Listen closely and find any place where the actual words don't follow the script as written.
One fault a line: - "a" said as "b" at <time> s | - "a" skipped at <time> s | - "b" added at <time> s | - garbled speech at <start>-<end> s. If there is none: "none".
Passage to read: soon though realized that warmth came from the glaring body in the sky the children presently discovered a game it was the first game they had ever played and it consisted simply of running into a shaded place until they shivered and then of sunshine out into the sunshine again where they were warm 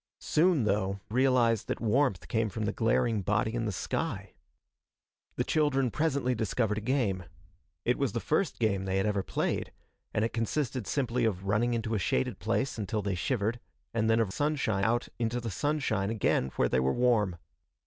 none